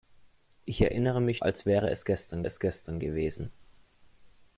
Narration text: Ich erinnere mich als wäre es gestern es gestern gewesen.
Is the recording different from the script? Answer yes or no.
no